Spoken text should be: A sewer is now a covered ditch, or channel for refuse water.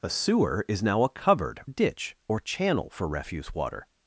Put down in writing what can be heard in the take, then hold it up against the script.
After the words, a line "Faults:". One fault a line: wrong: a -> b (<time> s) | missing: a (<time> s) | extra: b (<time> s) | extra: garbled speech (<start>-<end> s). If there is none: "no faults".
A sewer is now a covered ditch, or channel for refuse water.
Faults:
no faults